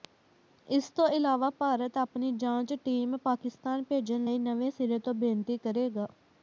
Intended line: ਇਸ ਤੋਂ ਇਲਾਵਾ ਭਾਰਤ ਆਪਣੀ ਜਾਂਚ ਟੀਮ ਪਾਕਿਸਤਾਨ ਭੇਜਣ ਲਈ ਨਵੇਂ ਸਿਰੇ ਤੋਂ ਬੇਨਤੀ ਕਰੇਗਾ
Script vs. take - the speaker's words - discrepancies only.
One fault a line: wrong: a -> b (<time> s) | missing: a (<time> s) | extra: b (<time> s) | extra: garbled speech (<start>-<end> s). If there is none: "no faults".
no faults